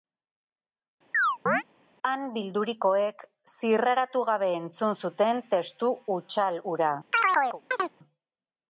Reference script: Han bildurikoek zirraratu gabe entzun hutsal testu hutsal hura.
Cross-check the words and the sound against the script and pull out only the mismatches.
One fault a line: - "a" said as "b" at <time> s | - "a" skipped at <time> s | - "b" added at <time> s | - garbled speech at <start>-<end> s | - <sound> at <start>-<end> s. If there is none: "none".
- chirp at 1.1-1.6 s
- "hutsal" said as "zuten" at 5.1 s
- chirp at 7.1-7.9 s